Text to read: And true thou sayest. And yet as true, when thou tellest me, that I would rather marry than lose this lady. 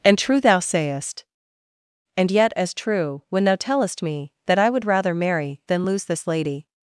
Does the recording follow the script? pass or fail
pass